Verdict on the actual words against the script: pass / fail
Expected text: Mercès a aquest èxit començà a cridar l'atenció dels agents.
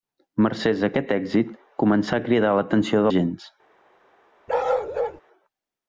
fail